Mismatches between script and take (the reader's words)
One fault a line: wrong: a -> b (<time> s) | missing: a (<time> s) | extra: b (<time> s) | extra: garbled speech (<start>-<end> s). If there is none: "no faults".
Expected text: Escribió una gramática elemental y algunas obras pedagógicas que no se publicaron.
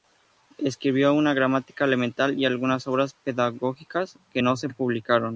no faults